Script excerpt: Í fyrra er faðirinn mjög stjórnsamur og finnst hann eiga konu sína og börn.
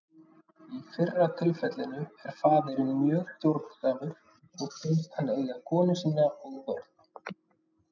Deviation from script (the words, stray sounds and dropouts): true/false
true